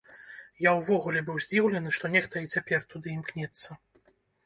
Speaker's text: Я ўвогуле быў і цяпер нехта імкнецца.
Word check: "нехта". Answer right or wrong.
wrong